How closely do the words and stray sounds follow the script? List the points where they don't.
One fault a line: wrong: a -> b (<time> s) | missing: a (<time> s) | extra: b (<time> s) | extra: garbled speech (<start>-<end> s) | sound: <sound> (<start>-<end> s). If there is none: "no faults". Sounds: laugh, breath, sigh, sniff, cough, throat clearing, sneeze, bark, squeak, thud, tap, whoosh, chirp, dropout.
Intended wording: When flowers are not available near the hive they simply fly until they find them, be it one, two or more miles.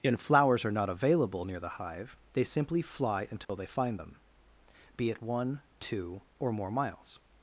wrong: When -> And (0.0 s)
sound: dropout (3.4-3.5 s)